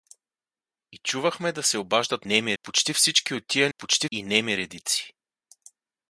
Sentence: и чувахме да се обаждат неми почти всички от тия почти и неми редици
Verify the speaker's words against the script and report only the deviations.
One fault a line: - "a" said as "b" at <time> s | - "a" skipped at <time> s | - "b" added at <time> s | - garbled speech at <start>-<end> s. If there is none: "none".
none